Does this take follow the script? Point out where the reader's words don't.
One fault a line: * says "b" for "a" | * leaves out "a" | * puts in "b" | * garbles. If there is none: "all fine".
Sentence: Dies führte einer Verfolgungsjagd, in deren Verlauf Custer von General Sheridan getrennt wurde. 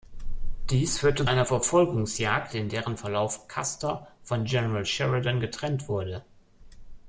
all fine